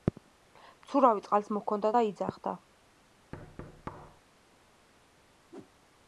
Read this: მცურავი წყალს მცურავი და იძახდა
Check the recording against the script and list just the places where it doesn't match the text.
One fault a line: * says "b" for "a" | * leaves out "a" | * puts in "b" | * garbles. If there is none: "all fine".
* says "მოჰქონდა" for "მცურავი"